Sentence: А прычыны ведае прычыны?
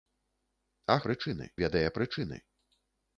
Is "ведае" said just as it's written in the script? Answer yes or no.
yes